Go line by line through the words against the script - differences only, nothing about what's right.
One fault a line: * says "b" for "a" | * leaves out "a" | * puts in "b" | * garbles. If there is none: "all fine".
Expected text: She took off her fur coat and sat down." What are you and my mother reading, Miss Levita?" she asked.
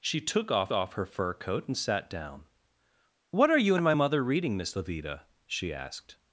* puts in "off"